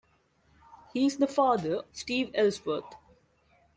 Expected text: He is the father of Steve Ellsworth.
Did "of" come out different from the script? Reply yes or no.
yes